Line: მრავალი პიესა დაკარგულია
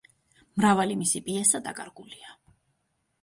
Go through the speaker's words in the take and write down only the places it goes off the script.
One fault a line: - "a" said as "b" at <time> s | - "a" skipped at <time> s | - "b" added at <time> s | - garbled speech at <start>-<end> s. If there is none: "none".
- "მისი" added at 1.0 s